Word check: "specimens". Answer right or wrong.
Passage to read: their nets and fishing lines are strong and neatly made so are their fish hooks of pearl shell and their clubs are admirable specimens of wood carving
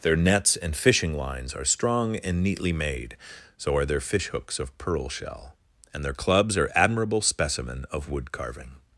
wrong